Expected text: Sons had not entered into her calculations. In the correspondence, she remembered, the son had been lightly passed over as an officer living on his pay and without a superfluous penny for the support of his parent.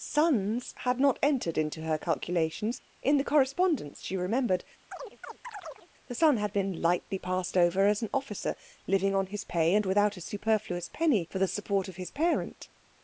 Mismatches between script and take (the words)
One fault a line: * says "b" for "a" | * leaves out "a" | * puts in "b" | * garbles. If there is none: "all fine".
all fine